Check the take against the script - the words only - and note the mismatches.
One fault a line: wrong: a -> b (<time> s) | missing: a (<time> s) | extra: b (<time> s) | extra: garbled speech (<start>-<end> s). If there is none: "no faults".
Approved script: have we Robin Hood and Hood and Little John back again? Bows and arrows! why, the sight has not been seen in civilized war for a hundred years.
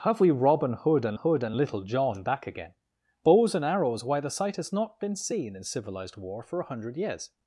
no faults